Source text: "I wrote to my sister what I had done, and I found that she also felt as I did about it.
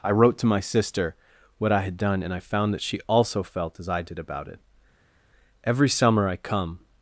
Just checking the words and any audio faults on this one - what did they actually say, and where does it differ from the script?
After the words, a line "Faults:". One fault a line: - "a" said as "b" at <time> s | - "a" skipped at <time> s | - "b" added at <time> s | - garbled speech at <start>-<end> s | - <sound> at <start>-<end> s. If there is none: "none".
"I wrote to my sister what I had done, and I found that she also felt as I did about it. Every summer I come
Faults:
- "Every summer I come" added at 5.6 s